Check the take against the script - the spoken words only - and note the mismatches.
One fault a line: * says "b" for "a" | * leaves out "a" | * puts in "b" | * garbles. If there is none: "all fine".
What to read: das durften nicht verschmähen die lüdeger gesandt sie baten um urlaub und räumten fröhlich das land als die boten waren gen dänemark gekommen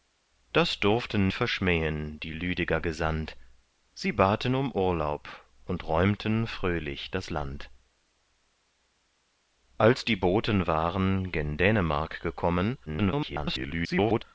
* leaves out "nicht"
* garbles